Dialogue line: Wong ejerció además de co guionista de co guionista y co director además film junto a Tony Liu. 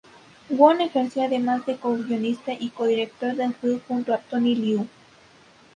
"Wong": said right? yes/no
yes